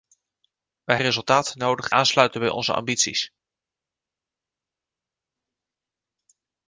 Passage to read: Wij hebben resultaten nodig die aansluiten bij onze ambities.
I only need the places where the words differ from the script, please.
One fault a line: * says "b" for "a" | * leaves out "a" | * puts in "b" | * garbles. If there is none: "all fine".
* leaves out "hebben"
* leaves out "die"